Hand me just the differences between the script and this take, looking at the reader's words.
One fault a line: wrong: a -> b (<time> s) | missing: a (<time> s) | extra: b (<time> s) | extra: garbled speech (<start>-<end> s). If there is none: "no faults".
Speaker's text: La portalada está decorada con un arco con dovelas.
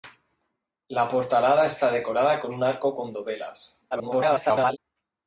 extra: garbled speech (3.9-4.8 s)